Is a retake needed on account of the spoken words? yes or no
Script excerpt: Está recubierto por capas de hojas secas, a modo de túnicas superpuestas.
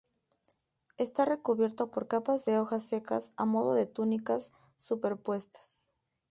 no